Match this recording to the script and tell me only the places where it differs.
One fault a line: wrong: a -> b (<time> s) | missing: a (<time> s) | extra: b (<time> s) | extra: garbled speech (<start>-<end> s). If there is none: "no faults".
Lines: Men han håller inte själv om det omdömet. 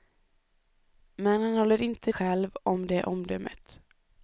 no faults